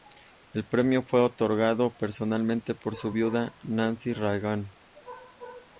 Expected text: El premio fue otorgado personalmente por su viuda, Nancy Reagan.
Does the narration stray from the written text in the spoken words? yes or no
no